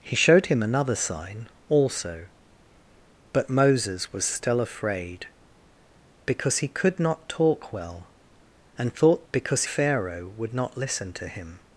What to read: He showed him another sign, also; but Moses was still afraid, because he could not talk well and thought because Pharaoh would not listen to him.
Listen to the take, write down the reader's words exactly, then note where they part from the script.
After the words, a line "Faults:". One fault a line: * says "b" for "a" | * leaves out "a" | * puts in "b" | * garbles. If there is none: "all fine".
He showed him another sign, also; but Moses was still afraid, because he could not talk well and thought because Pharaoh would not listen to him.
Faults:
all fine